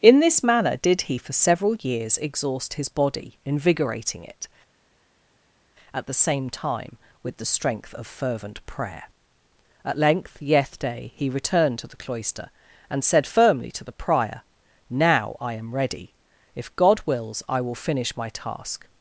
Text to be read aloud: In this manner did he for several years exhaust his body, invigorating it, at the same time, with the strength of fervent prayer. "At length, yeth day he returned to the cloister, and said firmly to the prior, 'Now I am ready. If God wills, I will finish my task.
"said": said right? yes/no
yes